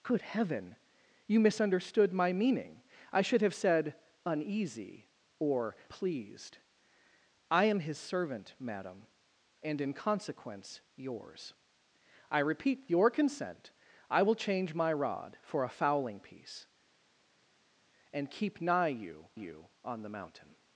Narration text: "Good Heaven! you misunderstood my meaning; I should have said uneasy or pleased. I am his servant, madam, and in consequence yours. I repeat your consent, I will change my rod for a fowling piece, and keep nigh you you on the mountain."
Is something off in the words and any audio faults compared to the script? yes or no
no